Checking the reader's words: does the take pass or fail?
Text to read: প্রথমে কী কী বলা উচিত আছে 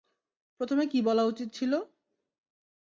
fail